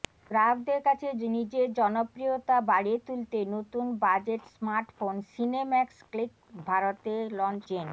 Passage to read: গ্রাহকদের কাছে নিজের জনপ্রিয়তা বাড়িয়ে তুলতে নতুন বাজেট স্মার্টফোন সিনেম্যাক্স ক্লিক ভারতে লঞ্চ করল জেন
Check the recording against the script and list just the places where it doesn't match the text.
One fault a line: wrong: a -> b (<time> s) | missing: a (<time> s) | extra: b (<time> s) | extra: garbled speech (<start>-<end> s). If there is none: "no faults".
missing: করল (7.6 s)